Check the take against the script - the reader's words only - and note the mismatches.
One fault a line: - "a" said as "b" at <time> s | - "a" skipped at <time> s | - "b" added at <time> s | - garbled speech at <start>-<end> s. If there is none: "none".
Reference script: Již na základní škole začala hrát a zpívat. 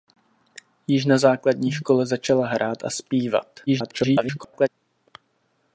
- garbled speech at 3.7-4.7 s